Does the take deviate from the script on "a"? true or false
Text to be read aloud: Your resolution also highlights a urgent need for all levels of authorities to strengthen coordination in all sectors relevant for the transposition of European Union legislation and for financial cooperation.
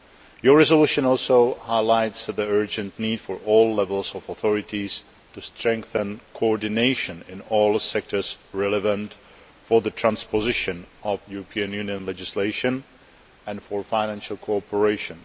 true